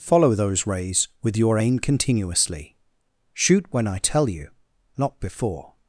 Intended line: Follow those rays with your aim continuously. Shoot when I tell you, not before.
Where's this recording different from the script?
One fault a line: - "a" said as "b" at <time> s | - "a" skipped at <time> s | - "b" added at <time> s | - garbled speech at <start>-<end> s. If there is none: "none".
none